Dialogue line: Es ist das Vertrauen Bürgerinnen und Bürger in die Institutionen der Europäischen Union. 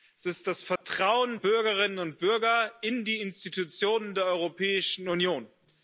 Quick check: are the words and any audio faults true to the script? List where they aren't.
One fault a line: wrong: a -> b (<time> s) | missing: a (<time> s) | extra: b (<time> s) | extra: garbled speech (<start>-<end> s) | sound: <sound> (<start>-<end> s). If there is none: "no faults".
sound: dropout (0.8-0.8 s)